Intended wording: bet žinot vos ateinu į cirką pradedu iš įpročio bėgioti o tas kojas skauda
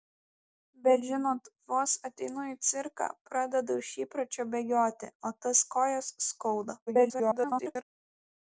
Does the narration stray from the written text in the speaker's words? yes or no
yes